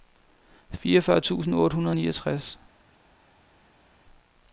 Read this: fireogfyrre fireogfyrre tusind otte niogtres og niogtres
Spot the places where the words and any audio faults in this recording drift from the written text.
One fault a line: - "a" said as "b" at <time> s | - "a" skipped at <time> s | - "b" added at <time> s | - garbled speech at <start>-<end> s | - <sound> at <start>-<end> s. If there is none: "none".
- "fireogfyrre" skipped at 1.2 s
- "niogtres" said as "hundrede" at 1.8 s